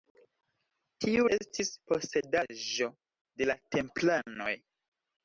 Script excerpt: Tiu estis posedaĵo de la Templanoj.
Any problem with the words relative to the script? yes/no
no